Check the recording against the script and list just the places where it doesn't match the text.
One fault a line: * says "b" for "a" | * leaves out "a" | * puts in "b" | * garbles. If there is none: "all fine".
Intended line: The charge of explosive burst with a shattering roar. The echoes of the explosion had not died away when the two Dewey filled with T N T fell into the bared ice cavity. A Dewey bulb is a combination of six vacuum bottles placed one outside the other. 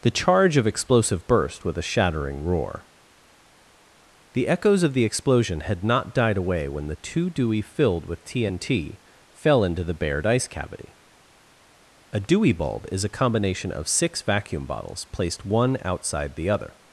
all fine